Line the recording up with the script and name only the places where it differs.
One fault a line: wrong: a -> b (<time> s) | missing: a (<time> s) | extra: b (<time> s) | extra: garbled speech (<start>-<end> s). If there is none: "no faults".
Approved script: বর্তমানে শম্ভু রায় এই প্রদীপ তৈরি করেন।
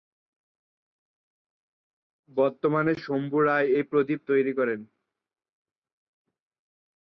no faults